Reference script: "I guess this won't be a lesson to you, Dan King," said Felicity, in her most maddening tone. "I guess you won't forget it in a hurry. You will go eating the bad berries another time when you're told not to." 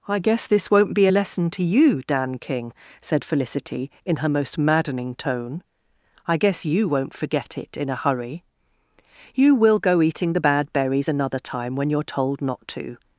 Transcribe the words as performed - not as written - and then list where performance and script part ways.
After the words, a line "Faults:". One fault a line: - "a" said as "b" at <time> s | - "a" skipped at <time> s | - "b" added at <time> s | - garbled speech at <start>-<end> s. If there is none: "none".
"I guess this won't be a lesson to you, Dan King," said Felicity, in her most maddening tone. "I guess you won't forget it in a hurry. You will go eating the bad berries another time when you're told not to."
Faults:
none